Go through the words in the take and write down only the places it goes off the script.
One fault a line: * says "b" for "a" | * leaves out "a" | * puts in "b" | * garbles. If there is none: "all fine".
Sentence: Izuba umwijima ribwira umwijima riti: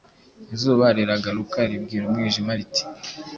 * says "riragaruka" for "umwijima"